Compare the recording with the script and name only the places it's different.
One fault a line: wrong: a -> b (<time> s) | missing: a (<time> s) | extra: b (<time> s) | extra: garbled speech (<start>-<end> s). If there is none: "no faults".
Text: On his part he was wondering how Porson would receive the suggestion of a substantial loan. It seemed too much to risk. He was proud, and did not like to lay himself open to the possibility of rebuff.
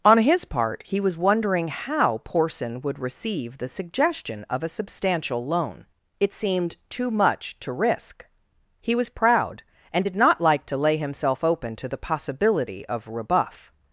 no faults